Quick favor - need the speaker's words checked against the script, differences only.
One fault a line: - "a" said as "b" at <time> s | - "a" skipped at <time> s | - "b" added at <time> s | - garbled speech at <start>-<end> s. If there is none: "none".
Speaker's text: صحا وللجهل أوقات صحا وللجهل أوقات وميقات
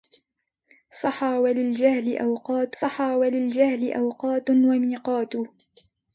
none